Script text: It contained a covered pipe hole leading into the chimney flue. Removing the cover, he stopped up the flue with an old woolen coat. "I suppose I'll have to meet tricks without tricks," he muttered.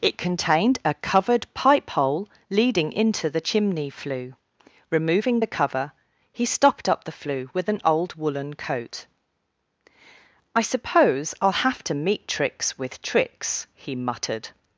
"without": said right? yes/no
no